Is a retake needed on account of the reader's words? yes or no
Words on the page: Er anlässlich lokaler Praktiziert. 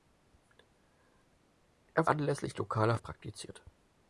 no